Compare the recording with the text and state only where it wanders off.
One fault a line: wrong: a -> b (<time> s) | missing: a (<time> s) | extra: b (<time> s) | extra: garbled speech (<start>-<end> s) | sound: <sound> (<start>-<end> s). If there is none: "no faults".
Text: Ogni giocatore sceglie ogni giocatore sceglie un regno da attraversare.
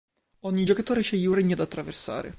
missing: ogni giocatore sceglie (1.3 s)